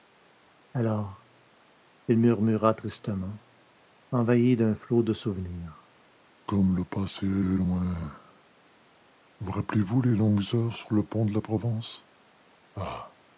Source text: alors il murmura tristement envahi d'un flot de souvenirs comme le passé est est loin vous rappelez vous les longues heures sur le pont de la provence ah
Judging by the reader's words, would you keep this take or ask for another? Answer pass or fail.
pass